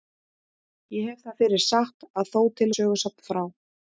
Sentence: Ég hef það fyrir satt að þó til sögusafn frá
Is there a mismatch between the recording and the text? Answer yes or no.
no